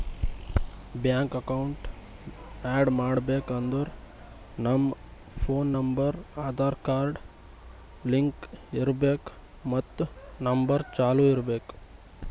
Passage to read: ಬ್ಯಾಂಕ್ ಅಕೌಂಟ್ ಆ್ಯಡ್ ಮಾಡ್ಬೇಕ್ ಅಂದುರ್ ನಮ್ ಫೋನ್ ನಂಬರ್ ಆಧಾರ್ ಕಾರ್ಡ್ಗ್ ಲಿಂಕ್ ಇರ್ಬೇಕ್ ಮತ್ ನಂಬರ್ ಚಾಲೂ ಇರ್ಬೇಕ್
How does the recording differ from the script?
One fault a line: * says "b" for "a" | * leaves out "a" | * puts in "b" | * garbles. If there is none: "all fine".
all fine